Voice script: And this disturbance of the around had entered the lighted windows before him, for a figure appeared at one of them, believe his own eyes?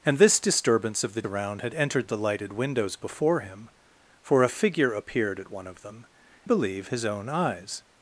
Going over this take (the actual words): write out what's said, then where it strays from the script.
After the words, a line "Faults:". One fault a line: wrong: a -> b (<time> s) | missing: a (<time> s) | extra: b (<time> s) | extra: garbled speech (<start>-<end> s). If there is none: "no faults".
And this disturbance of the around had entered the lighted windows before him, for a figure appeared at one of them, believe his own eyes?
Faults:
no faults